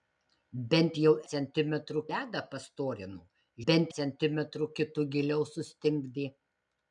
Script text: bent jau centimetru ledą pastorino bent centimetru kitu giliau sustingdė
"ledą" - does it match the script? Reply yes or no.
yes